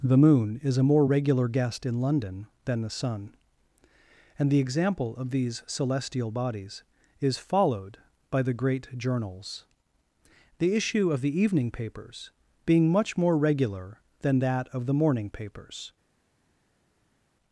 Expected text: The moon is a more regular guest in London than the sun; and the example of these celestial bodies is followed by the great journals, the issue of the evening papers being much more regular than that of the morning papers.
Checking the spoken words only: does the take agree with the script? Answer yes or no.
yes